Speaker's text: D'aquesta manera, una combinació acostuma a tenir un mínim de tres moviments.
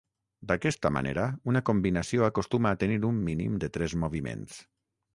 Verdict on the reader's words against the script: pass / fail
pass